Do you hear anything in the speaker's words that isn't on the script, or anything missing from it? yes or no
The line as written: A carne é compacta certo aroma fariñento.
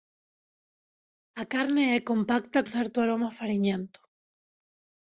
no